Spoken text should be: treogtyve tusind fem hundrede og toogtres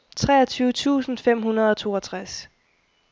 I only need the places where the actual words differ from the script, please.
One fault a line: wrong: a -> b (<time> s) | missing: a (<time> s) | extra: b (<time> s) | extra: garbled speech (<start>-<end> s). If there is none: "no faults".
no faults